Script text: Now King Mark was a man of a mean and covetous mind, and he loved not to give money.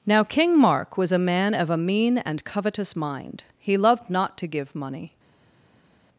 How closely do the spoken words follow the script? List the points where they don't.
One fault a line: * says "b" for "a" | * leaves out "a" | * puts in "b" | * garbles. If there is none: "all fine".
* leaves out "and"